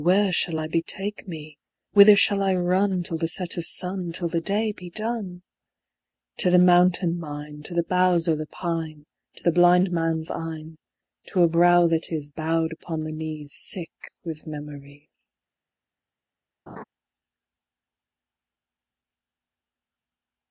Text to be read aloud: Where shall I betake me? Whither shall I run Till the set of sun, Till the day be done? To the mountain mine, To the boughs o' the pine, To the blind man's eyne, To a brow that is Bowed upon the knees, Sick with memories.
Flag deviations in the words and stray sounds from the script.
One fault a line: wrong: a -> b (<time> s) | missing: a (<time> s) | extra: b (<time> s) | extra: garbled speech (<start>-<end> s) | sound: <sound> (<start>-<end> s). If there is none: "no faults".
sound: laugh (16.7-16.8 s)